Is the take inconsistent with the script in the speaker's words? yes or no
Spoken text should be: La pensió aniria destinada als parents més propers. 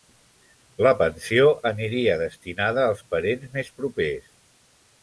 no